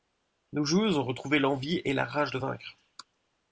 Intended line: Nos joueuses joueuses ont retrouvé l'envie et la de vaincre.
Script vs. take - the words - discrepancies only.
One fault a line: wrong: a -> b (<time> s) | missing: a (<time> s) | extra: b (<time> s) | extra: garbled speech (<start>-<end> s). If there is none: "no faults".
missing: joueuses (1.0 s)
extra: rage (2.0 s)